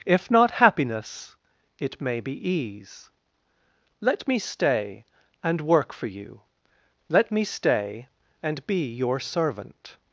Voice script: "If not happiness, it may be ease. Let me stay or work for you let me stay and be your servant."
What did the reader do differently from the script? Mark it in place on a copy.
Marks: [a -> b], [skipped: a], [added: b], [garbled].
"If not happiness, it may be ease. Let me stay [or -> and] work for you let me stay and be your servant."